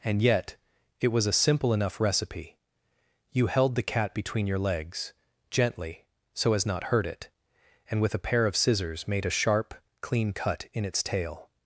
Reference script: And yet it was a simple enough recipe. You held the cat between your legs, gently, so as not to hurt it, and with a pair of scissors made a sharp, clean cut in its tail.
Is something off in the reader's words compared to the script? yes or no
yes